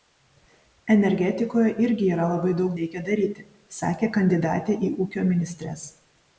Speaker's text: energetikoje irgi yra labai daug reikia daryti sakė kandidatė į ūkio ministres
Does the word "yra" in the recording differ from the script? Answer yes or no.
no